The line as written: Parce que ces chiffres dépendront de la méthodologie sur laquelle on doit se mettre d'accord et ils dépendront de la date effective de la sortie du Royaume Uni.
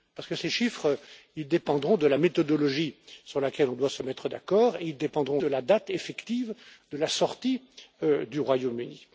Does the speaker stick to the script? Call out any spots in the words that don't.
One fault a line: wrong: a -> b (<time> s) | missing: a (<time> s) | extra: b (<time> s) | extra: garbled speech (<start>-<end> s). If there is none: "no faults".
no faults